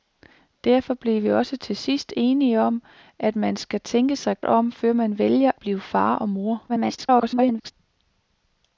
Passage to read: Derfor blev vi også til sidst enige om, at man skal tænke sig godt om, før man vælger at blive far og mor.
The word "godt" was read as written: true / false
false